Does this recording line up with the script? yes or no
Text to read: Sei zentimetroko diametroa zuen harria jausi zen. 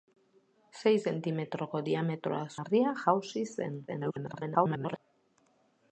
no